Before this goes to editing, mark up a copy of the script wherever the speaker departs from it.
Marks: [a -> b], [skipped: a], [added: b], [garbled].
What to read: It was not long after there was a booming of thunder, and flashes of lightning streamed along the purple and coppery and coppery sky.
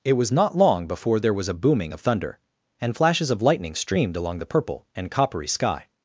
It was not long [after -> before] there was a booming of thunder, and flashes of lightning streamed along the purple and coppery [skipped: and coppery] sky.